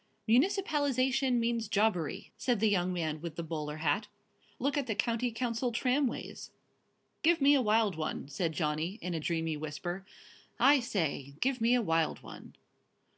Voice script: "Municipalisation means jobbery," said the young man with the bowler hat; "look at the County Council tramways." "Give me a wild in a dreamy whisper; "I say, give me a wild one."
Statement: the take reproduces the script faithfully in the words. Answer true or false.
false